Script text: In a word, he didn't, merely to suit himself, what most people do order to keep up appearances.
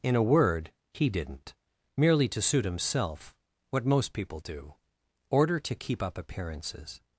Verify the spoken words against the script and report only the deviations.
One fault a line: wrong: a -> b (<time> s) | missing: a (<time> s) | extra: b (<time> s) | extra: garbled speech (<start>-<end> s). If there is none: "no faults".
no faults